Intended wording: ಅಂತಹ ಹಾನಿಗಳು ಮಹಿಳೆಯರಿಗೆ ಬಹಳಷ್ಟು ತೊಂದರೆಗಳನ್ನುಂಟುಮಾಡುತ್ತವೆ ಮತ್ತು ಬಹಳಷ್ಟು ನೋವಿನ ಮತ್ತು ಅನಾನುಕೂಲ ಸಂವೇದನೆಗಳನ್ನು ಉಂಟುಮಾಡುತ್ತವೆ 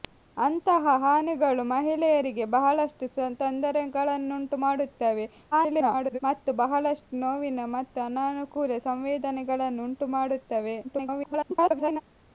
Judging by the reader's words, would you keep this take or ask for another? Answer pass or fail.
fail